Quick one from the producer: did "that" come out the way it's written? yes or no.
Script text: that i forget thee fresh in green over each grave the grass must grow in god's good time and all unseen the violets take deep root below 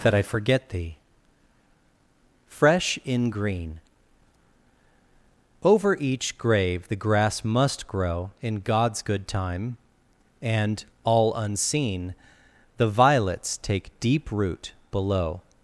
yes